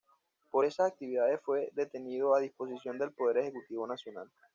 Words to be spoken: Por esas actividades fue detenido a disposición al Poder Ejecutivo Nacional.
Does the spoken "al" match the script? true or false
false